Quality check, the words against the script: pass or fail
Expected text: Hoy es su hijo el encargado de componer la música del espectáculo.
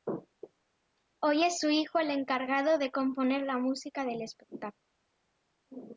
pass